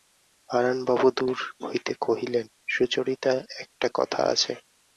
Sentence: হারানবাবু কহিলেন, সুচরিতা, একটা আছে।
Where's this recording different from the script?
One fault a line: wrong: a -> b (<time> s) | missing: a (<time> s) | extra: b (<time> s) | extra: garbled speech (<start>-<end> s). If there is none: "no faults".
extra: দূর হইতে (1.2 s)
extra: কথা (3.9 s)